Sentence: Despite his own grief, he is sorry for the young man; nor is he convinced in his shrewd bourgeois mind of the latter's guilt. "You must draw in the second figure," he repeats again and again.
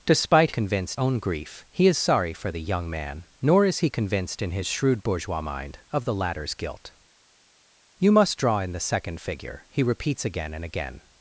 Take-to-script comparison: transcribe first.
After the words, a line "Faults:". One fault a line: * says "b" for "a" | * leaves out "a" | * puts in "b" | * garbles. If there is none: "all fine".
Despite convinced own grief, he is sorry for the young man; nor is he convinced in his shrewd bourgeois mind of the latter's guilt. "You must draw in the second figure," he repeats again and again.
Faults:
* says "convinced" for "his"